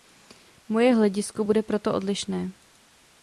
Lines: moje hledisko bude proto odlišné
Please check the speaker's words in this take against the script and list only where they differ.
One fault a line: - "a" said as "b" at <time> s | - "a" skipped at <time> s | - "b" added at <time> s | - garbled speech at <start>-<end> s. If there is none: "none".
none